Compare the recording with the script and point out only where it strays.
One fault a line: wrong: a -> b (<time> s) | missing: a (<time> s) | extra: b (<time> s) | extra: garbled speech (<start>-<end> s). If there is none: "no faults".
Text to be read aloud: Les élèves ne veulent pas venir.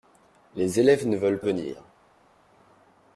missing: pas (1.4 s)